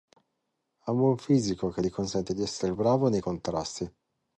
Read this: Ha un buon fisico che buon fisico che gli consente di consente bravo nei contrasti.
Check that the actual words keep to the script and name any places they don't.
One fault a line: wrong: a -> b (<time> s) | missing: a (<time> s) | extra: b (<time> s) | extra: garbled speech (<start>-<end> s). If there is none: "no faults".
missing: buon fisico che (1.8 s)
wrong: consente -> essere (2.4 s)